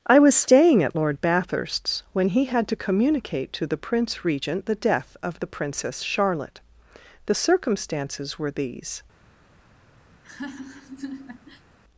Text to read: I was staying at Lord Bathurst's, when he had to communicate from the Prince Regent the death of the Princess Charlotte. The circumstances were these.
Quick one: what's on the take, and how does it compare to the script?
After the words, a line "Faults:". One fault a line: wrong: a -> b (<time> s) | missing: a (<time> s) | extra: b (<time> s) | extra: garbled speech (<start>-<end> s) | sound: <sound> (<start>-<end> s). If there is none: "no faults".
I was staying at Lord Bathurst's, when he had to communicate to the Prince Regent the death of the Princess Charlotte. The circumstances were these.
Faults:
wrong: from -> to (3.5 s)
sound: laugh (10.1-11.7 s)